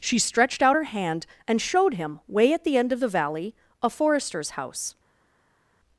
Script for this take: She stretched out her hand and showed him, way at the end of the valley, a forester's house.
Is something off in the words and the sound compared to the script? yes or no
no